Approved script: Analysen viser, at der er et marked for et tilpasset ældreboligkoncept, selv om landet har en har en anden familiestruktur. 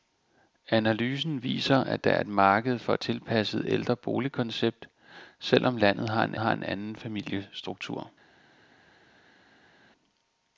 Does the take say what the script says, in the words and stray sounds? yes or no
yes